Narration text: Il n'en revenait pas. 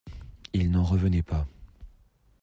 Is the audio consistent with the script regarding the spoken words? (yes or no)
yes